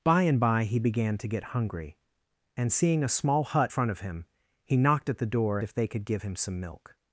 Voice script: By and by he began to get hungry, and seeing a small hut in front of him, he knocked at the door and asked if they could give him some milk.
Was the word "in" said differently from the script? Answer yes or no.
yes